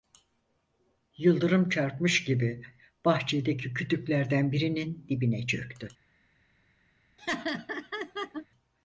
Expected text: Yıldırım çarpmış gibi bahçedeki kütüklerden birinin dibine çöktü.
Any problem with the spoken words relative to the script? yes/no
no